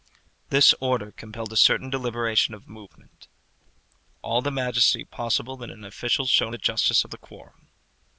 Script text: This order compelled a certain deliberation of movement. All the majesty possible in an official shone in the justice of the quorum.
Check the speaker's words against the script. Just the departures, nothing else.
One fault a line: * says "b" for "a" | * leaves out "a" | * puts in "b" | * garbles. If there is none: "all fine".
* leaves out "in"